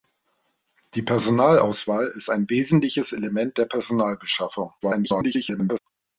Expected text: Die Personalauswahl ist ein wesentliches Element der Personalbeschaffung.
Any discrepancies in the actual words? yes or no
yes